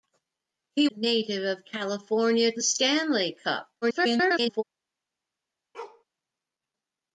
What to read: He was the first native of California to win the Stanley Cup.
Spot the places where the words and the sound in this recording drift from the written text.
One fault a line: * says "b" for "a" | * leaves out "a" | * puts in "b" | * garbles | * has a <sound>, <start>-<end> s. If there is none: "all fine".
* leaves out "was the first"
* leaves out "to win"
* garbles
* has a bark, 5.7-6.0 s